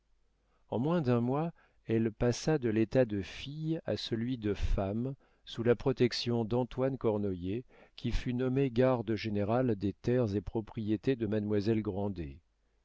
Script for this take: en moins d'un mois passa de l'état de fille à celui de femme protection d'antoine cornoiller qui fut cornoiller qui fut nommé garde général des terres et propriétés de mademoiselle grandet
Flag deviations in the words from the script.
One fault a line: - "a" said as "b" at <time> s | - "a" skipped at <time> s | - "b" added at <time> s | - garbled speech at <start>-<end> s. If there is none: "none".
- "elle" added at 1.9 s
- "sous la" added at 5.5 s
- "cornoiller qui fut" skipped at 8.3 s